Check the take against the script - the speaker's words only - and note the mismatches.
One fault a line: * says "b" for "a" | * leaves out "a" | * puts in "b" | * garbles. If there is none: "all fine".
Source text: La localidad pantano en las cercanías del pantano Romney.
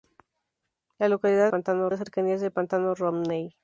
all fine